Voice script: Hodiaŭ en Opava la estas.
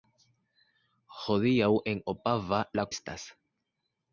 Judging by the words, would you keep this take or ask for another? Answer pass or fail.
pass